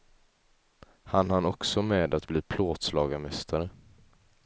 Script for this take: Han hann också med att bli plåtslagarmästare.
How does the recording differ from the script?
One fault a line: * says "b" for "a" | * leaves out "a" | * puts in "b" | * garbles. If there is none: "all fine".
all fine